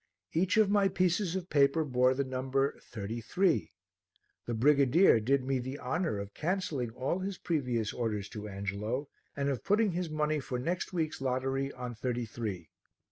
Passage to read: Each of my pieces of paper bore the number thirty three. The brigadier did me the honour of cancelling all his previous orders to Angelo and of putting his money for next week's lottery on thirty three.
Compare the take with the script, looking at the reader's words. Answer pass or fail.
pass